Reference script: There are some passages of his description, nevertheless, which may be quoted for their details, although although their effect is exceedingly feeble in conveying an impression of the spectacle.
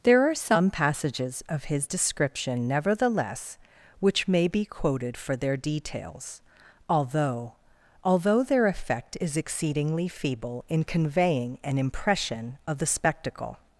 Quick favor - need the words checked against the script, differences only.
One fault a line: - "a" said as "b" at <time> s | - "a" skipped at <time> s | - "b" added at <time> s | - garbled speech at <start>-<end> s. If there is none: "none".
none